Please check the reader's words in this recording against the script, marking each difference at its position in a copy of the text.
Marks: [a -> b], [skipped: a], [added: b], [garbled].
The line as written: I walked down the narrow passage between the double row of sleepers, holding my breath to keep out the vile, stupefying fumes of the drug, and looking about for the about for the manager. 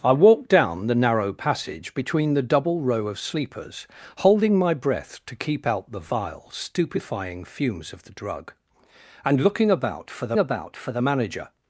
I walked down the narrow passage between the double row of sleepers, holding my breath to keep out the vile, stupefying fumes of the drug, and looking about for the about for the manager.